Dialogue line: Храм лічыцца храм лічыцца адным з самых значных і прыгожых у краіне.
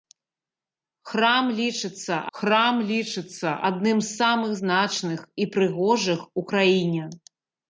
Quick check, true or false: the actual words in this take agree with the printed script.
true